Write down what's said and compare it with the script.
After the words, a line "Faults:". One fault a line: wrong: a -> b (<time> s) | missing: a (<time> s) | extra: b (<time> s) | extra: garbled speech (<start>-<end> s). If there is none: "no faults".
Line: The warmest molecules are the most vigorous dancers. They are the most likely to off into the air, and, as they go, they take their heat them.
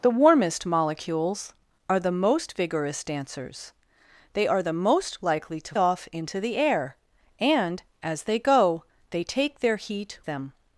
The warmest molecules are the most vigorous dancers. They are the most likely to off into the air, and, as they go, they take their heat them.
Faults:
no faults